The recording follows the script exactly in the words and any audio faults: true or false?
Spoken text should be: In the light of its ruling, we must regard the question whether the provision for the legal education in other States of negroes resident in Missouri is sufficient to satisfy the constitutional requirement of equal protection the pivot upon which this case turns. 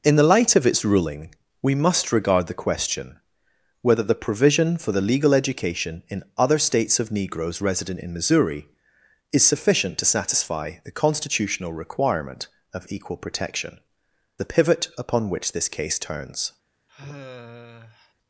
false